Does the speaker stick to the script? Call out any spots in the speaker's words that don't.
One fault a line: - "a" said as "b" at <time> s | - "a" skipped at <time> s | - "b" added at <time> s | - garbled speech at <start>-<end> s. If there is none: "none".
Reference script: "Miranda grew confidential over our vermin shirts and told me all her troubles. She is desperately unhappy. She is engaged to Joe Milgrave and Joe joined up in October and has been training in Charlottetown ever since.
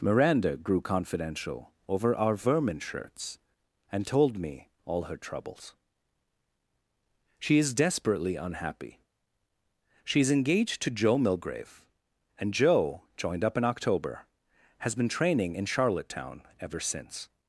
- "and" skipped at 14.2 s